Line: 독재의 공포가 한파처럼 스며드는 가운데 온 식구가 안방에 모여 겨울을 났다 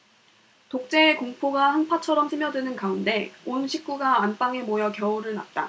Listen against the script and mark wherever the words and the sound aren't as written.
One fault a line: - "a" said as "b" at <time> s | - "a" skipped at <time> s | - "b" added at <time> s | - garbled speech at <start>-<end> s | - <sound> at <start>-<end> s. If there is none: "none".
none